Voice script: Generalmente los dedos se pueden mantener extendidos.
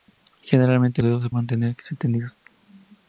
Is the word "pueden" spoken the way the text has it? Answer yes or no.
no